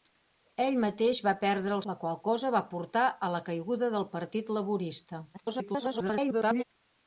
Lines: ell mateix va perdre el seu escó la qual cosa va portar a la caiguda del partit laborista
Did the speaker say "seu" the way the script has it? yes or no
no